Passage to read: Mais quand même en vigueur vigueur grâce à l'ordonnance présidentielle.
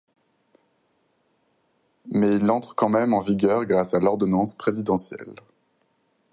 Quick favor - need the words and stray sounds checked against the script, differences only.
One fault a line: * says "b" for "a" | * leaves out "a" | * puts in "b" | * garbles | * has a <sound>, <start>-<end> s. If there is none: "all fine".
* puts in "il entre"
* leaves out "vigueur"